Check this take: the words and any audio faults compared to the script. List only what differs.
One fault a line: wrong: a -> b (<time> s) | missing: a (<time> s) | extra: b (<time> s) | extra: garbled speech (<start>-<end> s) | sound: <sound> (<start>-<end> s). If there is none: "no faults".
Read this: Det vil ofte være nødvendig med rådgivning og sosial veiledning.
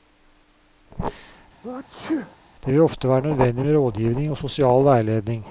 sound: sneeze (1.6-2.4 s)